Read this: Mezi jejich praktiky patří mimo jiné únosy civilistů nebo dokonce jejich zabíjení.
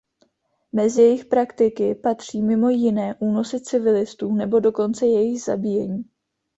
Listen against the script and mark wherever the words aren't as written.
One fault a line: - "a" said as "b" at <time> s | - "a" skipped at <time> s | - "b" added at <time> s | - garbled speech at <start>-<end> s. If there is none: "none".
none